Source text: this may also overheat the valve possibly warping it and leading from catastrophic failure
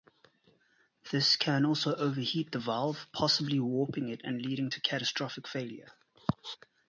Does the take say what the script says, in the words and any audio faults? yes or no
no